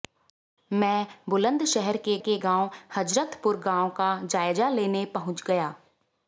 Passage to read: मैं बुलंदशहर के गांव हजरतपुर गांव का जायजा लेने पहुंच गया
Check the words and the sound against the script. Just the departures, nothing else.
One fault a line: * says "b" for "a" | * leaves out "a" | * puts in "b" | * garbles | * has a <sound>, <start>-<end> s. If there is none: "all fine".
* puts in "के"